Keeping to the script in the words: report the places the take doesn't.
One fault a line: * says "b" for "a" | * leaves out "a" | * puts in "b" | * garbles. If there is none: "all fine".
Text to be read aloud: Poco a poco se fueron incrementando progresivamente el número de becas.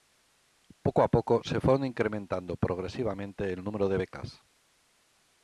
all fine